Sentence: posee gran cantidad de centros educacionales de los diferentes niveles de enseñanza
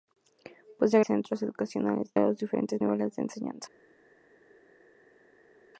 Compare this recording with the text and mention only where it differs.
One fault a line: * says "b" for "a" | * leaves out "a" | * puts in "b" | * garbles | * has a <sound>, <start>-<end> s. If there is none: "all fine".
* leaves out "gran cantidad de"
* leaves out "de"